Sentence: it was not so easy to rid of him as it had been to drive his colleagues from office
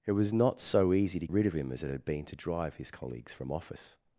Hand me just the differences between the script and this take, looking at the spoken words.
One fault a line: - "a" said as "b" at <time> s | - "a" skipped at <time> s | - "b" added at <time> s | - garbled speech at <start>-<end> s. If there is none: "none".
none